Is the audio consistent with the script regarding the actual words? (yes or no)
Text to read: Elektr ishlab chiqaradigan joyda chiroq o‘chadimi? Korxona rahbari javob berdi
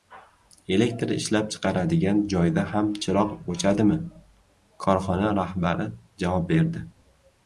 no